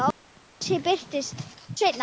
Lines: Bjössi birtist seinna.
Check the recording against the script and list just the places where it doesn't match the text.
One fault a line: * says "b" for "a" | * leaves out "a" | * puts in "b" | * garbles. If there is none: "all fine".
all fine